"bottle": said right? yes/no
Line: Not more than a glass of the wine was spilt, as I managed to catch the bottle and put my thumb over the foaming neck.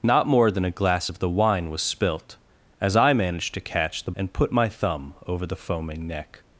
no